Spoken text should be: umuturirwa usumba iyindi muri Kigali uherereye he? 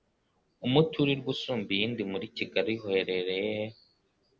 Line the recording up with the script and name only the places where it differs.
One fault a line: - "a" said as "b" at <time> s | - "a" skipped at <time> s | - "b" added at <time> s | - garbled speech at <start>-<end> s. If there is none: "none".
none